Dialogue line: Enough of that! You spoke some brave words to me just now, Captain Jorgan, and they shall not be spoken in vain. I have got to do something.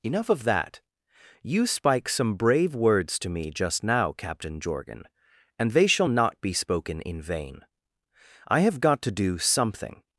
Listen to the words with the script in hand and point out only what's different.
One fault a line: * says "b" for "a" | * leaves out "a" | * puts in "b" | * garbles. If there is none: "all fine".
* says "spike" for "spoke"